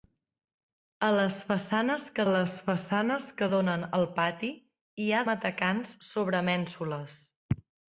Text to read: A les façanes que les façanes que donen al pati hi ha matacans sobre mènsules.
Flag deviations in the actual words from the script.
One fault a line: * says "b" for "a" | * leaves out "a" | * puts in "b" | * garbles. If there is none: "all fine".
all fine